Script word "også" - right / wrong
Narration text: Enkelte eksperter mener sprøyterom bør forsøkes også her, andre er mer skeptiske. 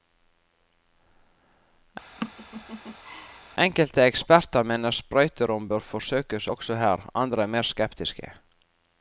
right